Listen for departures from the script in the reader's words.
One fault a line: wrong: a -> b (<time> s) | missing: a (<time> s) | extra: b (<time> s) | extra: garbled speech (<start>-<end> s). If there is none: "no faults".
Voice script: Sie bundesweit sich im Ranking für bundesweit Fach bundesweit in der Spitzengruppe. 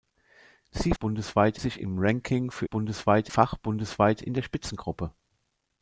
no faults